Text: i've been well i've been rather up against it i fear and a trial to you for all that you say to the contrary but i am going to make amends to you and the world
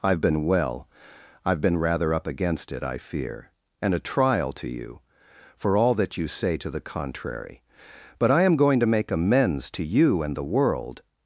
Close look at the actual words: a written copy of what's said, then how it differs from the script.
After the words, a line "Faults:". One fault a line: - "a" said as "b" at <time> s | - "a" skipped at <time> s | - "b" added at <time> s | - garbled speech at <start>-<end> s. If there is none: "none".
i've been well i've been rather up against it i fear and a trial to you for all that you say to the contrary but i am going to make amends to you and the world
Faults:
none